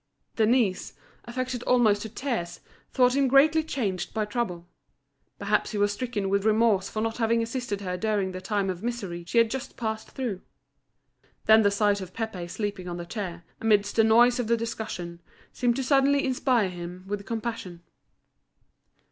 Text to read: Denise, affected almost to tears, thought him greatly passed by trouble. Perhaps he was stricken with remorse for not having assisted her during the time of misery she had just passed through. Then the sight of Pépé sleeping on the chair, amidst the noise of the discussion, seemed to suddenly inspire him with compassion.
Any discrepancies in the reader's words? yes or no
yes